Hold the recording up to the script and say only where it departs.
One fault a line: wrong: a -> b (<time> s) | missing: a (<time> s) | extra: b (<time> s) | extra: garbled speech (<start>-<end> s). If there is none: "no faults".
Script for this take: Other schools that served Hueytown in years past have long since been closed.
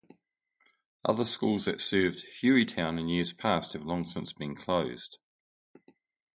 no faults